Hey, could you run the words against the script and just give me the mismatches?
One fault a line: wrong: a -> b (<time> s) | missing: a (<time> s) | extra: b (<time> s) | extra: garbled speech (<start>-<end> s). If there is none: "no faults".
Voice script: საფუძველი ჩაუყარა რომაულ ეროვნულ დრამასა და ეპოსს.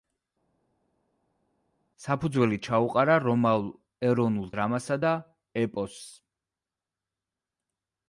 no faults